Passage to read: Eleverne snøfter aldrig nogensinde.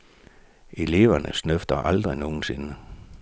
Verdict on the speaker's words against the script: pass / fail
pass